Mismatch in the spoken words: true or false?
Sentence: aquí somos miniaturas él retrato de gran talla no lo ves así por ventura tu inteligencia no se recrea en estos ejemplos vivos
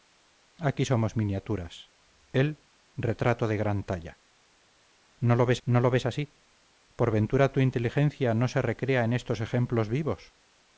true